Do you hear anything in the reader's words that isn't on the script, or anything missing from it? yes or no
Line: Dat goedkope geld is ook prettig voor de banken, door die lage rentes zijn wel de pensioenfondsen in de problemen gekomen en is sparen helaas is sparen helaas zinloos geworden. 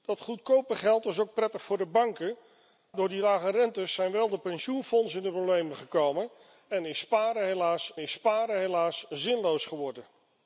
no